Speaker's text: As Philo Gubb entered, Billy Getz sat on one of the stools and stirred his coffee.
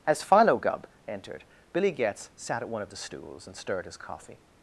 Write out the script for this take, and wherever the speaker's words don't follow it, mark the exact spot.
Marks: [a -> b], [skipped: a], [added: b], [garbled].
As Philo Gubb entered, Billy Getz sat [on -> at] one of the stools and stirred his coffee.